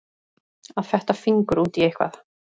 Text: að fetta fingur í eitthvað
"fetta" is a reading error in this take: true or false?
false